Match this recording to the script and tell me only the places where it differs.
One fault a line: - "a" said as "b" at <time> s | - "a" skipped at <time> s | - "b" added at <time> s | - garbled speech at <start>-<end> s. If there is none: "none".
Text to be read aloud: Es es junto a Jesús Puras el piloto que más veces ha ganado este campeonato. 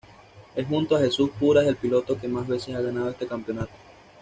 - "es" skipped at 0.7 s